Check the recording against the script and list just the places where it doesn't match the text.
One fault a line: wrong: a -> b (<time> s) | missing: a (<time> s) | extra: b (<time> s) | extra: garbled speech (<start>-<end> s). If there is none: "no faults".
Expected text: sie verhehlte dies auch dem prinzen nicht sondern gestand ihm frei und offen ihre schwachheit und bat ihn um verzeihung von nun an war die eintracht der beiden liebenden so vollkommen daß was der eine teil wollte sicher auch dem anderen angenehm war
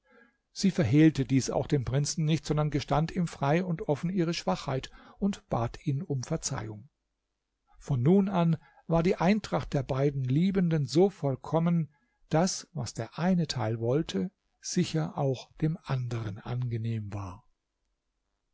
no faults